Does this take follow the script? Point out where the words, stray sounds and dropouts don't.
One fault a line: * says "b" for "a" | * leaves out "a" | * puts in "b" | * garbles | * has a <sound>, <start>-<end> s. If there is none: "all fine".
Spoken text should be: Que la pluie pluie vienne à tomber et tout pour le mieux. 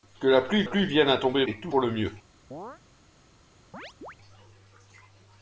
* has a chirp, 2.5-2.8 s
* has a chirp, 3.7-4.2 s